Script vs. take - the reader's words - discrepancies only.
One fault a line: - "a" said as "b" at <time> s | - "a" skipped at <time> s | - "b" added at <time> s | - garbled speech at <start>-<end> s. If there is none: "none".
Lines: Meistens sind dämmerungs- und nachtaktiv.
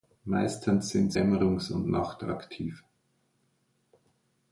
none